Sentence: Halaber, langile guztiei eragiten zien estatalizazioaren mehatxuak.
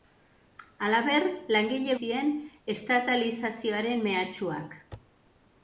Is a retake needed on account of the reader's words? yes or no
yes